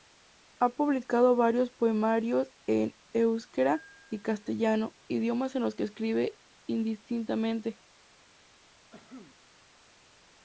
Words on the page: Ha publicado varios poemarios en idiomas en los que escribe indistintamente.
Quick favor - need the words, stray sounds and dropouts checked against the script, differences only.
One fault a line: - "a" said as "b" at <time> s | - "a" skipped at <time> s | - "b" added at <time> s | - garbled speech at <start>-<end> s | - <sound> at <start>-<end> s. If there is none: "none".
- "euskera y castellano" added at 3.1 s
- cough at 8.9-9.3 s